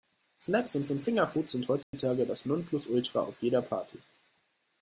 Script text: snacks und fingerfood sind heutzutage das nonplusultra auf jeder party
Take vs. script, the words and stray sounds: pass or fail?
fail